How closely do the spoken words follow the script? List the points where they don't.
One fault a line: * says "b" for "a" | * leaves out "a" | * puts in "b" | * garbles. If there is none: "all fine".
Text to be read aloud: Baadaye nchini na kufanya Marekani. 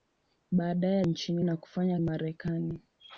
all fine